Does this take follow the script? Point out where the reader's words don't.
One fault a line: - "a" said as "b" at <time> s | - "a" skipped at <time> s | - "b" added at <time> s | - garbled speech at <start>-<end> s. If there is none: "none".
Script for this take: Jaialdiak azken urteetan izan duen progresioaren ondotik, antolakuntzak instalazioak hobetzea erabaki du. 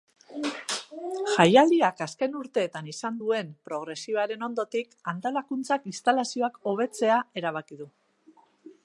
none